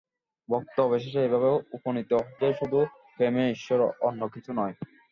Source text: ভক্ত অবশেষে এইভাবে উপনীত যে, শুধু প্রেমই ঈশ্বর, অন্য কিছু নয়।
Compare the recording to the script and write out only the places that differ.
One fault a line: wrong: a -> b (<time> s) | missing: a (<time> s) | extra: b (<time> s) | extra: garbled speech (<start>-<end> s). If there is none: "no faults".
no faults